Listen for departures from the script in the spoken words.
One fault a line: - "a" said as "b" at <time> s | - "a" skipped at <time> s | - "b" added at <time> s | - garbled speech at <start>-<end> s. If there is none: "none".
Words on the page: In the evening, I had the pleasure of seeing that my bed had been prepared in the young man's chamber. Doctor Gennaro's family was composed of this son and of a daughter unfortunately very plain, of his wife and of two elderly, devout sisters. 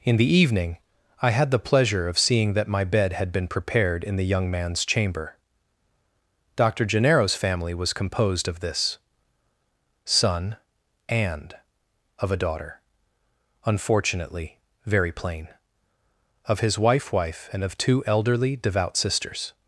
- "wife" added at 17.1 s